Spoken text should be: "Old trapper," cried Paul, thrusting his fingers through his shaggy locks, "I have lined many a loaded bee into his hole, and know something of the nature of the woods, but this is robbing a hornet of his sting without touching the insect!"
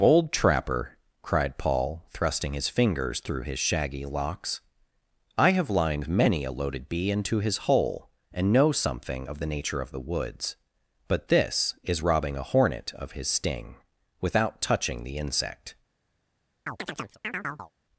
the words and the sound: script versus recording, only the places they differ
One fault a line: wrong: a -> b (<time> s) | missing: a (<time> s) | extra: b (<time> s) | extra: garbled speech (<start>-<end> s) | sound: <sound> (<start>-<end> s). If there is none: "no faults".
wrong: Old -> Bold (0.0 s)
sound: chirp (16.7-17.7 s)